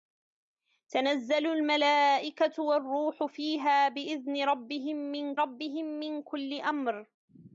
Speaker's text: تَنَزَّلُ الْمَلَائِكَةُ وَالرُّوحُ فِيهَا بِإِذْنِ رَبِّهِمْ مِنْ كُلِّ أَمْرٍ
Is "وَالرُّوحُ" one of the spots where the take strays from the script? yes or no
no